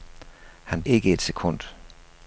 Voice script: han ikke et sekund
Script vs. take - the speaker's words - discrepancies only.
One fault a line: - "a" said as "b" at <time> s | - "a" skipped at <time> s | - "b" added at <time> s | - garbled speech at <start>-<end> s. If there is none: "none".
none